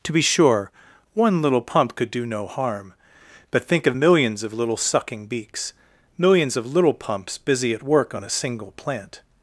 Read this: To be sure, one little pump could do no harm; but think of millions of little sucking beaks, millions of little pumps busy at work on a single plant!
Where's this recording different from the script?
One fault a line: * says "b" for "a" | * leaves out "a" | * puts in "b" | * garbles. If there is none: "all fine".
all fine